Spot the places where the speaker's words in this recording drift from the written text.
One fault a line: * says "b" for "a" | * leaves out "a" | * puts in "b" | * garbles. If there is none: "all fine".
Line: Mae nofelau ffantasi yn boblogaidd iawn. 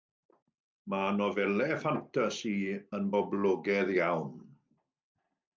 all fine